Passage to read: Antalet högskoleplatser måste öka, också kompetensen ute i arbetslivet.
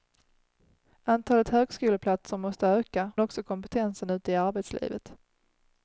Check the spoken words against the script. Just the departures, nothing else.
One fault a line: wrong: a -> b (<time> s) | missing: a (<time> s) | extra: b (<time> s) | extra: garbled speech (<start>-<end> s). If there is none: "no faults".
no faults